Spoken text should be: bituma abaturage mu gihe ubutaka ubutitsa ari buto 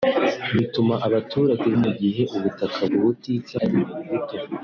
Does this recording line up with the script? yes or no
yes